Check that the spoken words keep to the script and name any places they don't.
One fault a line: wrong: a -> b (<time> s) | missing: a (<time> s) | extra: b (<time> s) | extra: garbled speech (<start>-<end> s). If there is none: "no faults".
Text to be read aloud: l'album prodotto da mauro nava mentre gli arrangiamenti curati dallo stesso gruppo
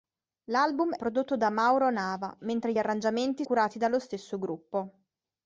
no faults